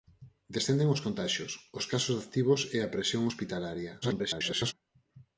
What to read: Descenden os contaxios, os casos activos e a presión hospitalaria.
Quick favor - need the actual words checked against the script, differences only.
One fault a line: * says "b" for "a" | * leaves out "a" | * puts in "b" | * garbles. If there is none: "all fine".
* garbles